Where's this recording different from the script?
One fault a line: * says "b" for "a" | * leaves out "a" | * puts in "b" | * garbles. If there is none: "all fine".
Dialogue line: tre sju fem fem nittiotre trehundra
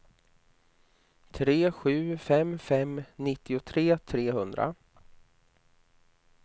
all fine